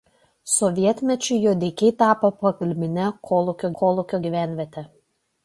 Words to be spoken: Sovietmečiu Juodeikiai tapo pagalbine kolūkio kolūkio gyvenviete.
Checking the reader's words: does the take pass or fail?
pass